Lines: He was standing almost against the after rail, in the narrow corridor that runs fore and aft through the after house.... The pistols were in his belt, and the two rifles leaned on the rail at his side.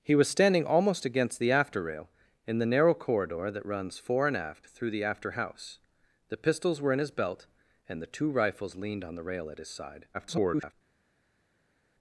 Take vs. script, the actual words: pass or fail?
fail